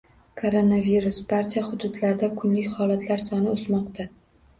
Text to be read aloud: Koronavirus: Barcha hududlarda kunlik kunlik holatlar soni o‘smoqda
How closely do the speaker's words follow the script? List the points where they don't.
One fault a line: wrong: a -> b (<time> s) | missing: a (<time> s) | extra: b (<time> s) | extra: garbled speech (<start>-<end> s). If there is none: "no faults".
missing: kunlik (2.7 s)